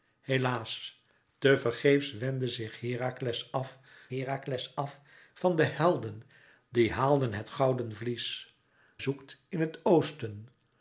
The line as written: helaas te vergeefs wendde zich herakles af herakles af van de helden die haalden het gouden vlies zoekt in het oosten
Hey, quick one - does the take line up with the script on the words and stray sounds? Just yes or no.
yes